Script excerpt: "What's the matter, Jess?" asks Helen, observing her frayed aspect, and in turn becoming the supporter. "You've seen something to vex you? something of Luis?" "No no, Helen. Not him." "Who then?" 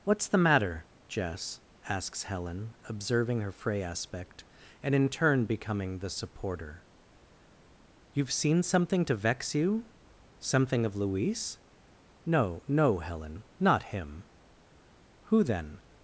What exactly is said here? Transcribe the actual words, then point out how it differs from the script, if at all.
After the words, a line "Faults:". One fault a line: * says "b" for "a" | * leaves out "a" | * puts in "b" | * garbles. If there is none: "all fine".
"What's the matter, Jess?" asks Helen, observing her fray aspect, and in turn becoming the supporter. "You've seen something to vex you? something of Luis?" "No no, Helen. Not him." "Who then?"
Faults:
* says "fray" for "frayed"